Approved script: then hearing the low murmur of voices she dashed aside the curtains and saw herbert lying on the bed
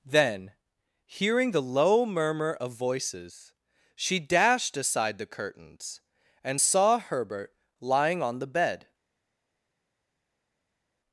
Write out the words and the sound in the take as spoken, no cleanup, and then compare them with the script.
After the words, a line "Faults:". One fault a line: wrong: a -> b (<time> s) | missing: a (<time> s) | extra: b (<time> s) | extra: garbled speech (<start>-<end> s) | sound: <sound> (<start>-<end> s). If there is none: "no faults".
then hearing the low murmur of voices she dashed aside the curtains and saw herbert lying on the bed
Faults:
no faults